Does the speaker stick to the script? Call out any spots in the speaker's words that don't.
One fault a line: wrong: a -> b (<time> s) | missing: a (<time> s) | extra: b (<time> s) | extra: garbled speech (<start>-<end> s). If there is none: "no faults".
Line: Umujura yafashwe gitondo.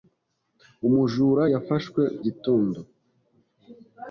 no faults